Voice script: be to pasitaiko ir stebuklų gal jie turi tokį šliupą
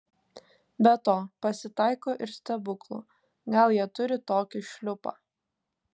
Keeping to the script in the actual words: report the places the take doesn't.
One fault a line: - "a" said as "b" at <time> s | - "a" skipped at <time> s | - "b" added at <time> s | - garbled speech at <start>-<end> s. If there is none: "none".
none